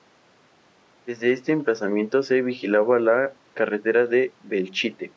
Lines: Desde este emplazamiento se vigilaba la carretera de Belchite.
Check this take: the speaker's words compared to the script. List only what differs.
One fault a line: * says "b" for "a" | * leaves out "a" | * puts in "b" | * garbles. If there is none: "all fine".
all fine